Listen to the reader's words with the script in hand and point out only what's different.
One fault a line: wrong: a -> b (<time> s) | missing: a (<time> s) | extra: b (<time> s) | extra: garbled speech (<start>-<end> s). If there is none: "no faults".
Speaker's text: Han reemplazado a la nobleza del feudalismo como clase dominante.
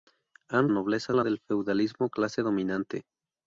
wrong: reemplazado -> nobleza (0.7 s)
missing: nobleza (1.2 s)
missing: como (2.1 s)